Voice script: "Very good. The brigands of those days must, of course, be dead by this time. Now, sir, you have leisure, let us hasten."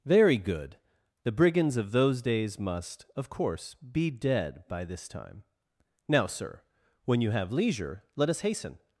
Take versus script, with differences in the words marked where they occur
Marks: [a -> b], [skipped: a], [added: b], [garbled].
"Very good. The brigands of those days must, of course, be dead by this time. Now, sir, [added: when] you have leisure, let us hasten."